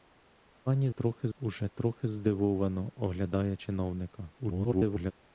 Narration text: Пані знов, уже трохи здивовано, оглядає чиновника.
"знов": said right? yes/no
no